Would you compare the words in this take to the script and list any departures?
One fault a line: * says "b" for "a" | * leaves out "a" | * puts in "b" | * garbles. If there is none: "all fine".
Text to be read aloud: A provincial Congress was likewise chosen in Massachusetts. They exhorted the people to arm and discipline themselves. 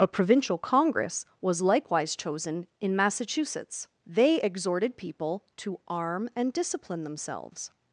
* leaves out "the"